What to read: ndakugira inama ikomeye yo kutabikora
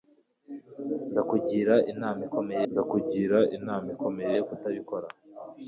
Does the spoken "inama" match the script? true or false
true